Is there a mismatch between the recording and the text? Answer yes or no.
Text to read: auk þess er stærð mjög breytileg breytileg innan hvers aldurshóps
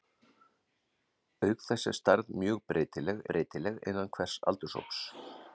no